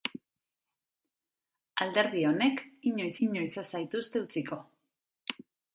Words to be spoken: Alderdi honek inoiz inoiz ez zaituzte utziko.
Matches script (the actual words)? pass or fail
pass